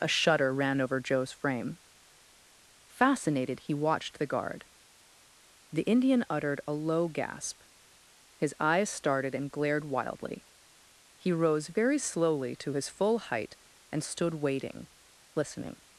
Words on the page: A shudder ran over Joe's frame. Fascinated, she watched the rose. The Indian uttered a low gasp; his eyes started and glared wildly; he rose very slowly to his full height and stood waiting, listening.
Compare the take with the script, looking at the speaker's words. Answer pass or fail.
fail